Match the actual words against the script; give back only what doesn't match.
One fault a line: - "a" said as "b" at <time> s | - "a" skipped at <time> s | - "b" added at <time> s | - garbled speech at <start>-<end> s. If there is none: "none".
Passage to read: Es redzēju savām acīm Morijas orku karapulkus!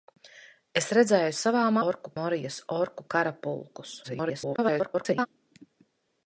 - "acīm" said as "orku" at 1.9 s
- garbled speech at 4.0-5.3 s